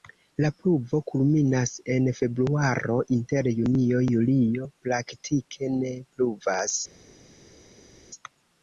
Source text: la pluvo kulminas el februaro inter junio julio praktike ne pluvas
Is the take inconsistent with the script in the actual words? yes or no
yes